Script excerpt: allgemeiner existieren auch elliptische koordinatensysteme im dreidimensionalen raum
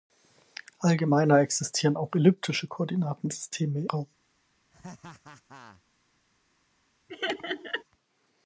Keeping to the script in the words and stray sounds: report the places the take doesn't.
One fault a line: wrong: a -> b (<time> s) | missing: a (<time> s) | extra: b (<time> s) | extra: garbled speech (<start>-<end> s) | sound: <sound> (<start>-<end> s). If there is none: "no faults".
missing: im dreidimensionalen (3.9 s)
sound: laugh (4.7-5.8 s)
sound: laugh (7.1-7.8 s)